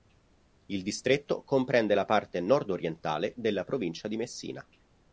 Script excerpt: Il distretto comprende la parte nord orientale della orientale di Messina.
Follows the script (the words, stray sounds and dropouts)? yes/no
no